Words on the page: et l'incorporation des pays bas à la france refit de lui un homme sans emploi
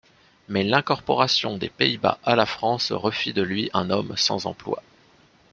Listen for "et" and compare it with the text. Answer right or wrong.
wrong